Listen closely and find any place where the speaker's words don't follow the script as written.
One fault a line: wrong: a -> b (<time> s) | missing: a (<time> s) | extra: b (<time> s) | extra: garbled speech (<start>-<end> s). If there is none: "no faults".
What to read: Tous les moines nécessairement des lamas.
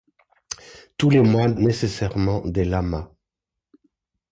no faults